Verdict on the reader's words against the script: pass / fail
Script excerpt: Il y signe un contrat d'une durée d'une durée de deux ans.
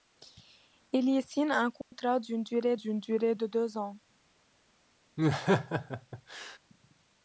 pass